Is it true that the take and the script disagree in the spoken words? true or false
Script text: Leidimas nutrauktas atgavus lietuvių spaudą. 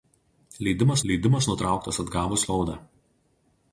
true